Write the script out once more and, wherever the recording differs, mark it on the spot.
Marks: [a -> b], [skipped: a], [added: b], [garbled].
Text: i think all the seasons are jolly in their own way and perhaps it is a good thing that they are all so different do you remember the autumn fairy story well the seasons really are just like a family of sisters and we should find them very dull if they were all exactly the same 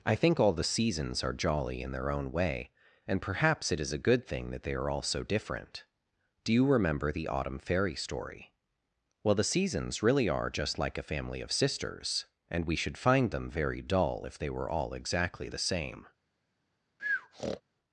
i think all the seasons are jolly in their own way and perhaps it is a good thing that they are all so different do you remember the autumn fairy story well the seasons really are just like a family of sisters and we should find them very dull if they were all exactly the same